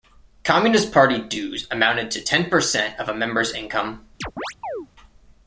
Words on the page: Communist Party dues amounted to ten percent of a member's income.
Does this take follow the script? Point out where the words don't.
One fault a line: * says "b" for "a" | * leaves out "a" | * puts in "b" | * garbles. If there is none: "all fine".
all fine